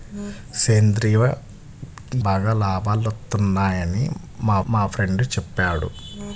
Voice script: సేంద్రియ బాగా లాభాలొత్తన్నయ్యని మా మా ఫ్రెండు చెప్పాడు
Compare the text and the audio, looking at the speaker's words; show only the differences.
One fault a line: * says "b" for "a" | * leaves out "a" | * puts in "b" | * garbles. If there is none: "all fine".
all fine